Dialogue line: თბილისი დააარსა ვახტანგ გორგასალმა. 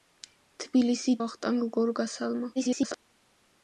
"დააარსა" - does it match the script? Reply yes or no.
no